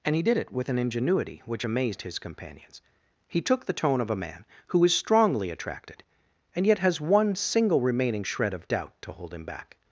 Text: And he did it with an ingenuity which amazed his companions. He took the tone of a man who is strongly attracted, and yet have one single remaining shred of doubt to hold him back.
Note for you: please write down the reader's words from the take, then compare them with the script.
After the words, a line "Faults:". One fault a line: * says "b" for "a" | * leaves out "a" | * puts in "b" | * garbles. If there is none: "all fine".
And he did it with an ingenuity which amazed his companions. He took the tone of a man who is strongly attracted, and yet has one single remaining shred of doubt to hold him back.
Faults:
* says "has" for "have"